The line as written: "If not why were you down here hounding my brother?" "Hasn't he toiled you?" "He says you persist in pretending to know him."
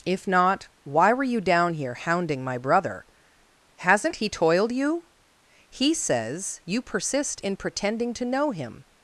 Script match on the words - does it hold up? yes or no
yes